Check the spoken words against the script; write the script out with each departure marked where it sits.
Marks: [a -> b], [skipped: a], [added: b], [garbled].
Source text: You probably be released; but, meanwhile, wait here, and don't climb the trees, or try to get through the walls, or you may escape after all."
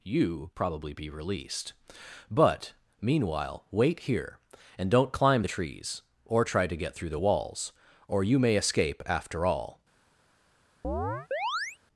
You probably be released; but, meanwhile, wait here, and don't climb the trees, or try to get through the walls, or you may escape after all."